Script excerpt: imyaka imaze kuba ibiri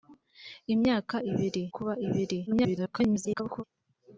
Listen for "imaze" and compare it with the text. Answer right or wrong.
wrong